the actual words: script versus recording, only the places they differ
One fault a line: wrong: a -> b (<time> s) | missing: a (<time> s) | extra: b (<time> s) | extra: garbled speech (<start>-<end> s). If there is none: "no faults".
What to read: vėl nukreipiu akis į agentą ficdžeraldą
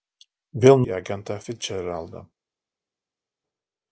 missing: nukreipiu akis (0.8 s)